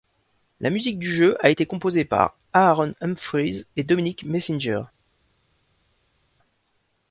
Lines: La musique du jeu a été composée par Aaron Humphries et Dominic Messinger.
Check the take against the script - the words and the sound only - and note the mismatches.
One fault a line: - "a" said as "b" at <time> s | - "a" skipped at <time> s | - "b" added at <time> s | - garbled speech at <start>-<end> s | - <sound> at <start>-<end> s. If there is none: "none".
none